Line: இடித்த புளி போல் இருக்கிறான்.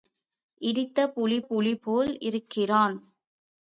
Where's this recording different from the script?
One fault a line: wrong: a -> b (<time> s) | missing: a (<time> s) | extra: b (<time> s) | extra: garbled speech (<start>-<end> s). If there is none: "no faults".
extra: புளி (1.4 s)